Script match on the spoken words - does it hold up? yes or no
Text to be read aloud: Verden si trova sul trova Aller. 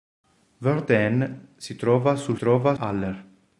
yes